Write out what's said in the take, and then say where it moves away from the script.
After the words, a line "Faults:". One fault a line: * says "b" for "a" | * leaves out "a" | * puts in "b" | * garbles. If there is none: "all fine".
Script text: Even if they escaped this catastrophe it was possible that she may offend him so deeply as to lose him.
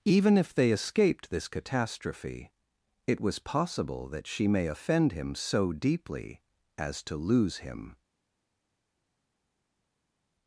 Even if they escaped this catastrophe it was possible that she may offend him so deeply as to lose him.
Faults:
all fine